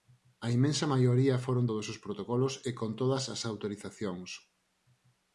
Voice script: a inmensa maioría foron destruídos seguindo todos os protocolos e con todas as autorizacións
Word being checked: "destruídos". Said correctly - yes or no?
no